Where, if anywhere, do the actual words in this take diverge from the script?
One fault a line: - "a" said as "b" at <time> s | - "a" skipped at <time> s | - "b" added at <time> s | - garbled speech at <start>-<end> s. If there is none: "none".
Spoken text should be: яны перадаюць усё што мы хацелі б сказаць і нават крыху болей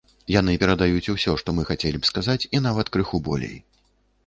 none